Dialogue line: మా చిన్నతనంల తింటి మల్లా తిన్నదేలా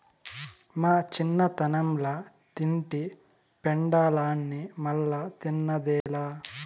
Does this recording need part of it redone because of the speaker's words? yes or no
yes